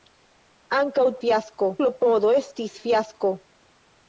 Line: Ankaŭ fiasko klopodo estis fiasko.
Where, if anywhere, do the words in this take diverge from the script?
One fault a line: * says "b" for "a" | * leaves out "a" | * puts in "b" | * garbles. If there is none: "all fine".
all fine